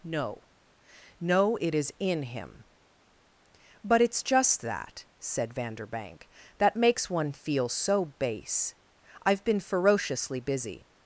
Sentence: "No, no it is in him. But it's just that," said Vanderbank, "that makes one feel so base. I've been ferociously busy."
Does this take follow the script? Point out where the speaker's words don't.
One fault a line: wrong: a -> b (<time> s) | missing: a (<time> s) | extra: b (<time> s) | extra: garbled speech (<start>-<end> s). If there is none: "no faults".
no faults